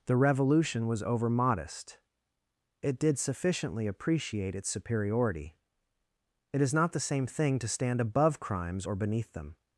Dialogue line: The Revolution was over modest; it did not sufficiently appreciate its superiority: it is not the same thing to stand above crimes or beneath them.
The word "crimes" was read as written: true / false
true